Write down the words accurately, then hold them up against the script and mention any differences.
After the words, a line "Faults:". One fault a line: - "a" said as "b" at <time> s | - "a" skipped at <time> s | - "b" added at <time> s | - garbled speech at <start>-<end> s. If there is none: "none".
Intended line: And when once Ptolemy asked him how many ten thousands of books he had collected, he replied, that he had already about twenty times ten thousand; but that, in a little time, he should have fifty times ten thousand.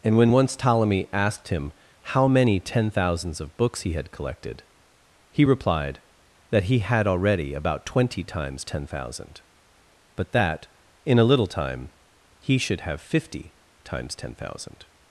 And when once Ptolemy asked him how many ten thousands of books he had collected, he replied, that he had already about twenty times ten thousand; but that, in a little time, he should have fifty times ten thousand.
Faults:
none